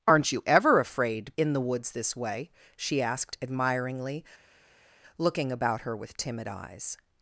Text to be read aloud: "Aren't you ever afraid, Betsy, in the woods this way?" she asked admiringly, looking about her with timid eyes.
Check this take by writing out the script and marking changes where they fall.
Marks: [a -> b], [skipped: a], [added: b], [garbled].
"Aren't you ever afraid, [skipped: Betsy,] in the woods this way?" she asked admiringly, looking about her with timid eyes.